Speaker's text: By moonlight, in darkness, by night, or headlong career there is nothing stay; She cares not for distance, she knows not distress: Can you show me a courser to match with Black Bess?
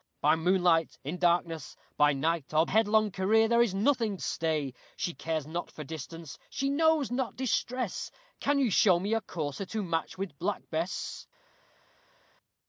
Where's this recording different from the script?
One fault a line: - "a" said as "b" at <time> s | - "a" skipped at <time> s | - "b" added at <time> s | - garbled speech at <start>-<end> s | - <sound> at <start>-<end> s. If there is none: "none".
none